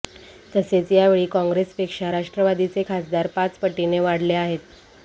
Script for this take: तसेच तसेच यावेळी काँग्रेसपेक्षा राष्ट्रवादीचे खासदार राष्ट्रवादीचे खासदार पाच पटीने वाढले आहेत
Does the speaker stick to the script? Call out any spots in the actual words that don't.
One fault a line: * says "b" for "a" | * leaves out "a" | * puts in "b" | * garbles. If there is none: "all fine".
* leaves out "तसेच"
* leaves out "राष्ट्रवादीचे खासदार"